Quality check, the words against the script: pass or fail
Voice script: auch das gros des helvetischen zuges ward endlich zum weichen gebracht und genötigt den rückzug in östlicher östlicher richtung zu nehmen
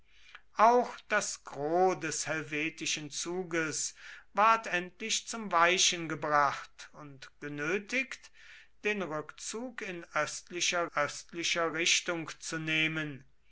pass